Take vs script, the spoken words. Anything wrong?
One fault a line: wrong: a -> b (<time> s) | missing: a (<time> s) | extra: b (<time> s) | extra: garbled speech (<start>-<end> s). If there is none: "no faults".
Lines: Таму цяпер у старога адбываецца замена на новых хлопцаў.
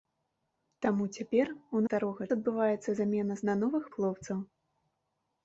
no faults